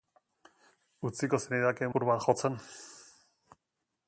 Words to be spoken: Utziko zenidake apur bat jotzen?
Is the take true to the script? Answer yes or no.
yes